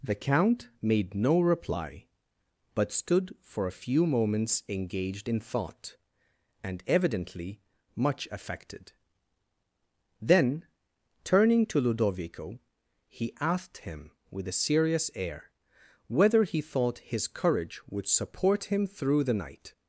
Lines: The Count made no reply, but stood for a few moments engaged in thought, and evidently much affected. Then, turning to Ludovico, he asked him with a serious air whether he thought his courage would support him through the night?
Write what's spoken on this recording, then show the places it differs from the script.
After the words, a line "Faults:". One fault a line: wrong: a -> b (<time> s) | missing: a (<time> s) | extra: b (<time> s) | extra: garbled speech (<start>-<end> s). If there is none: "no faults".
The Count made no reply, but stood for a few moments engaged in thought, and evidently much affected. Then, turning to Ludovico, he asked him with a serious air whether he thought his courage would support him through the night?
Faults:
no faults